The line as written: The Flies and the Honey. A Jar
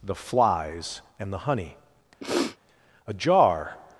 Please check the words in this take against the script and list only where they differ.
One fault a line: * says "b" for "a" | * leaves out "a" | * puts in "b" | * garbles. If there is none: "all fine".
all fine